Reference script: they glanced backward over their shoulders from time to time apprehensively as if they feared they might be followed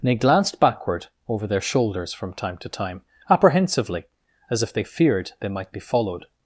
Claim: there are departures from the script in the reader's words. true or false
true